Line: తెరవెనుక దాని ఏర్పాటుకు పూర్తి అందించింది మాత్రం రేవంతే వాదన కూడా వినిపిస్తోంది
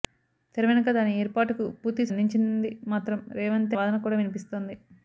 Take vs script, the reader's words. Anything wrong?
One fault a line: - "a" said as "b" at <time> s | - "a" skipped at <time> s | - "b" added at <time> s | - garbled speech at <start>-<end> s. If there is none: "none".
none